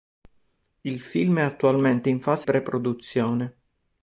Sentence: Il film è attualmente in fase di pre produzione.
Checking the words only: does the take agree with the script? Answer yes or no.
no